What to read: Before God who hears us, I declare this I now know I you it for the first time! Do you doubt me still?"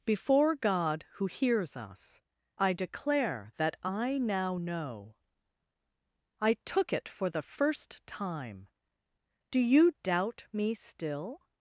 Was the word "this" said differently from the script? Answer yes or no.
yes